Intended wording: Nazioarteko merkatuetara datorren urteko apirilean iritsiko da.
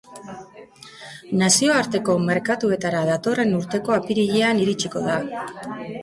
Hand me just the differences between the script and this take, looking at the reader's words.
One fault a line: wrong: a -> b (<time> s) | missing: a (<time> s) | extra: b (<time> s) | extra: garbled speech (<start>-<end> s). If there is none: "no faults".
no faults